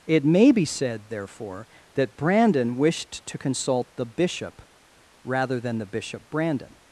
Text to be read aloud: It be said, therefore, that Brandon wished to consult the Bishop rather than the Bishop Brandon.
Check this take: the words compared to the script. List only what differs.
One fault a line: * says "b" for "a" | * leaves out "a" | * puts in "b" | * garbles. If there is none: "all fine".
* puts in "may"